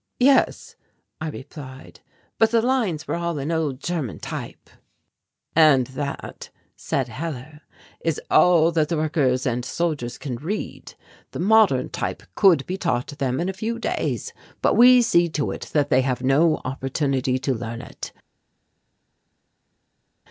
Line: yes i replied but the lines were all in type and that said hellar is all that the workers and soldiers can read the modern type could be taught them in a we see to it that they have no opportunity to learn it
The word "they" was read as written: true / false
true